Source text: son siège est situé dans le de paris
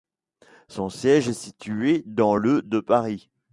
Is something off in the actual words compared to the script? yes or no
no